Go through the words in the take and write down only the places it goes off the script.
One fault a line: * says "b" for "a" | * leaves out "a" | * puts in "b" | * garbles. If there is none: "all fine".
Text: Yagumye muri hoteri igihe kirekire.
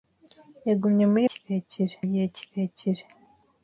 * says "kirekire" for "hoteri"